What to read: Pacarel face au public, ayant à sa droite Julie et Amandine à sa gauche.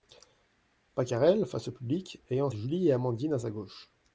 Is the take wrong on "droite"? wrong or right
wrong